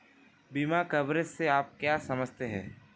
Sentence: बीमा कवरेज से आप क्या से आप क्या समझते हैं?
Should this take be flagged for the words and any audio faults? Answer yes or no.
yes